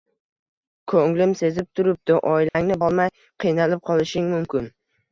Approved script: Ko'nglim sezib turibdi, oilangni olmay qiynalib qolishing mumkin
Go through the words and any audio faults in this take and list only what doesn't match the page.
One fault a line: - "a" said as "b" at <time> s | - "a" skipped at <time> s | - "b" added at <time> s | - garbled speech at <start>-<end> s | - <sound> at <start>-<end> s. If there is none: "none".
- dropout at 2.5-2.5 s